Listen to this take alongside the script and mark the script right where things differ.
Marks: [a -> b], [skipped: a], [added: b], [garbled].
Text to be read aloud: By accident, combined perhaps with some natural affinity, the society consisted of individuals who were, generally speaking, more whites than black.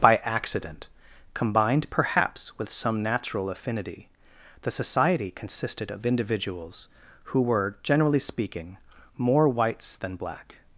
By accident, combined perhaps with some natural affinity, the society consisted of individuals who were, generally speaking, more whites than black.